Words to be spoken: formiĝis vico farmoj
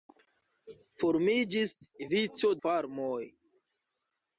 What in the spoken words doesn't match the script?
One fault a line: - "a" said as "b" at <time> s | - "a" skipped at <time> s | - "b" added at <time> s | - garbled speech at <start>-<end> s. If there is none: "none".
none